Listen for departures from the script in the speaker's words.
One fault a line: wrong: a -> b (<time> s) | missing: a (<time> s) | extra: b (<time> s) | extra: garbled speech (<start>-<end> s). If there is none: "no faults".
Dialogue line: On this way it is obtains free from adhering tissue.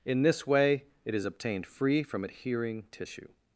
wrong: On -> In (0.1 s)
wrong: obtains -> obtained (1.2 s)